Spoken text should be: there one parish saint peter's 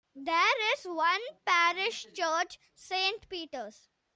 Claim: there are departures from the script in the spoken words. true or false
true